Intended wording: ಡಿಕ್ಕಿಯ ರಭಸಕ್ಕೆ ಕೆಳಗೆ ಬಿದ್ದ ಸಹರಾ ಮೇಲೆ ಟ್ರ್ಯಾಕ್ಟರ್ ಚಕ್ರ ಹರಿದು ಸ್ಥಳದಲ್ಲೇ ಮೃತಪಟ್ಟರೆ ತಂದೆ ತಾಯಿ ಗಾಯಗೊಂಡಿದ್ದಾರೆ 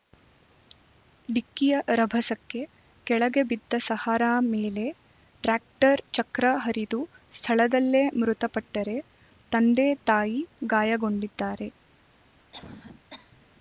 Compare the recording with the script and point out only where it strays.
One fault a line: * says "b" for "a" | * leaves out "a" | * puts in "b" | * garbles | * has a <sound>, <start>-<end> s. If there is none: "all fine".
* has a cough, 12.5-13.5 s